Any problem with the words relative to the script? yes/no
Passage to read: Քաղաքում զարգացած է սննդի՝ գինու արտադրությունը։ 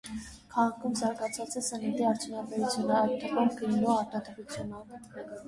yes